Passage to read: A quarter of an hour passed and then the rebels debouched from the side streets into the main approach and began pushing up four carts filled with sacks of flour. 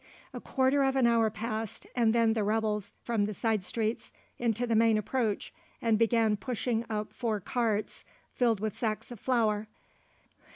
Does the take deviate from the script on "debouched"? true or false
true